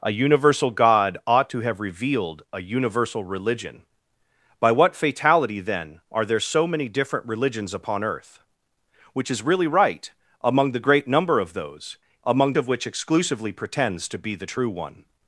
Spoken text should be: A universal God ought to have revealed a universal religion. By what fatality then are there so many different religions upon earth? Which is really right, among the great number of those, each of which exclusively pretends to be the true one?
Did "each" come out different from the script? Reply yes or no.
yes